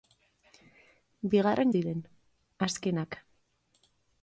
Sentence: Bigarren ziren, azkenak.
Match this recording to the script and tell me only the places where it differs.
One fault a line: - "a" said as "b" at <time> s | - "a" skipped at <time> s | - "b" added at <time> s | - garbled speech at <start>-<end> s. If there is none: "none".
none